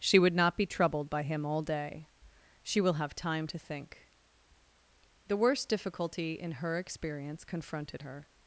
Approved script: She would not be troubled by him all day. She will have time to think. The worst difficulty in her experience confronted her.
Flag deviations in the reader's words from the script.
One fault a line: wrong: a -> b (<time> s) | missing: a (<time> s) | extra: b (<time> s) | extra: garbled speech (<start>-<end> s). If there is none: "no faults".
no faults